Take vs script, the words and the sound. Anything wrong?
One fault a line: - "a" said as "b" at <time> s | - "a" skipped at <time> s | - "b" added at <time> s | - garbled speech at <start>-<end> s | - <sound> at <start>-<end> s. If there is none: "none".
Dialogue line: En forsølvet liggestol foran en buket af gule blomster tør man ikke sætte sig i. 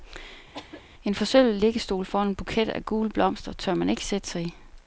- cough at 0.5-0.8 s